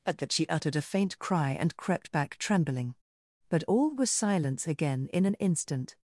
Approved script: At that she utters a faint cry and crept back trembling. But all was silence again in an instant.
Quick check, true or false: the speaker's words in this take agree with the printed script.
false